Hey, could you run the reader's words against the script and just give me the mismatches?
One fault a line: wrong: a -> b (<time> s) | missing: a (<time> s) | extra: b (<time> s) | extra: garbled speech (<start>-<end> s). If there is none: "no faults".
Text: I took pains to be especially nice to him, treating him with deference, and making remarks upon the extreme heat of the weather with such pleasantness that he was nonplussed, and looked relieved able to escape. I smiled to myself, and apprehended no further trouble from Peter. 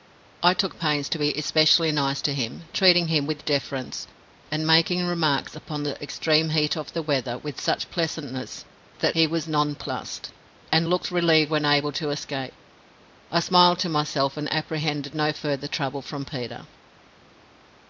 extra: when (11.5 s)